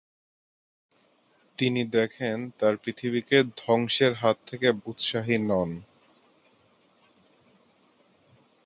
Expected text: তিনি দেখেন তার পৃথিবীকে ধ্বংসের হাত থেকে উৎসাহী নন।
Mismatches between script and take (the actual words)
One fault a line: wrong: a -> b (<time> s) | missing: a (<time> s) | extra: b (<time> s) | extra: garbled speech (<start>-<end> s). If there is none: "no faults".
no faults